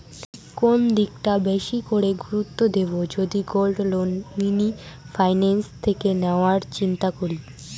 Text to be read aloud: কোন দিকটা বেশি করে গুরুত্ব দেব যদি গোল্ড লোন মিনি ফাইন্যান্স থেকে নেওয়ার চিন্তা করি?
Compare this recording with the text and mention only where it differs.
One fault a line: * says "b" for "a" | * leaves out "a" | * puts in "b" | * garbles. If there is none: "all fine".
all fine